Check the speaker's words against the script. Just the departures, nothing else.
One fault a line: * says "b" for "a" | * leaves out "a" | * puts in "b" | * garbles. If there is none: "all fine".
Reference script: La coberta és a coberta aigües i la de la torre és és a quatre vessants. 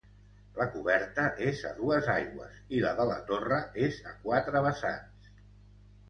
* says "dues" for "coberta"
* leaves out "és"